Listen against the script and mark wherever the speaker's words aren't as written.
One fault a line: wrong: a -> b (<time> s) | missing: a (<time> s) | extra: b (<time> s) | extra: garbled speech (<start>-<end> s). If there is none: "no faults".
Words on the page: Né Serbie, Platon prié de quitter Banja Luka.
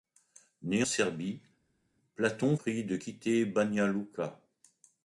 no faults